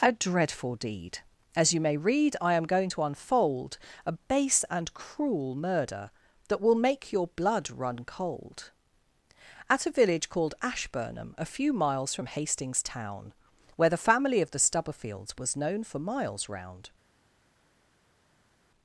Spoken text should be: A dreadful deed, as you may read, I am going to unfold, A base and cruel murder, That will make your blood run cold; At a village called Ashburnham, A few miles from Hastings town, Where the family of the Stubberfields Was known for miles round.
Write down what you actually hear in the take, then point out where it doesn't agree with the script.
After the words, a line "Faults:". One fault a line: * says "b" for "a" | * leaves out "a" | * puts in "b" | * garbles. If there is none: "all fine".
A dreadful deed, as you may read, I am going to unfold, A base and cruel murder, That will make your blood run cold; At a village called Ashburnham, A few miles from Hastings town, Where the family of the Stubberfields Was known for miles round.
Faults:
all fine